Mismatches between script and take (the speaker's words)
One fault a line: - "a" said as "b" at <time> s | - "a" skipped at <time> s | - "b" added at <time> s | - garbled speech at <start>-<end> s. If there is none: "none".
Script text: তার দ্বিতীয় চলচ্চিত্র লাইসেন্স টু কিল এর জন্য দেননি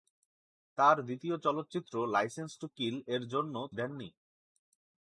none